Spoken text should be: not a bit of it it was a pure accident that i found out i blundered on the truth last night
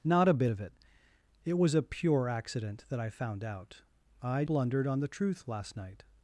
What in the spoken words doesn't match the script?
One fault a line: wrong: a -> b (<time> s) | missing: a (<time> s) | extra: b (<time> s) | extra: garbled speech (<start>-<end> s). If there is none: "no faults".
no faults